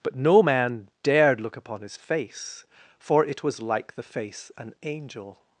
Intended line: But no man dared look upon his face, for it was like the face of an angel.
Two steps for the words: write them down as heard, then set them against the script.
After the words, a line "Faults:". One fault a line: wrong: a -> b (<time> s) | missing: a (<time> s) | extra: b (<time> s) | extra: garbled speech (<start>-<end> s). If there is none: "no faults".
But no man dared look upon his face, for it was like the face an angel.
Faults:
missing: of (4.5 s)